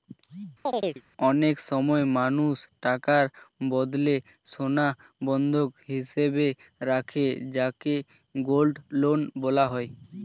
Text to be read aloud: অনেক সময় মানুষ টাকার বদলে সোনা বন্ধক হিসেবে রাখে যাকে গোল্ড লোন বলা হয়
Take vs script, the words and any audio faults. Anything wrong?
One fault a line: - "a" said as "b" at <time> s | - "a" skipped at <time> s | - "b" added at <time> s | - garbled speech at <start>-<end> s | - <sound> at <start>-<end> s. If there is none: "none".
- chirp at 0.7-1.0 s